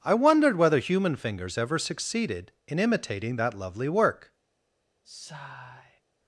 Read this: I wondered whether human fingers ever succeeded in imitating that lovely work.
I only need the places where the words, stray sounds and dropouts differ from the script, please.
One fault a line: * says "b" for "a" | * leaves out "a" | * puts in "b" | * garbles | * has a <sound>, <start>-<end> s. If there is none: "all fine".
* has a sigh, 5.0-6.0 s